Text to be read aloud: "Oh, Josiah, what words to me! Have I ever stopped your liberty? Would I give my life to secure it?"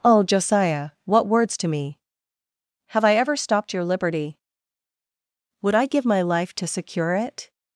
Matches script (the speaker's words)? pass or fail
pass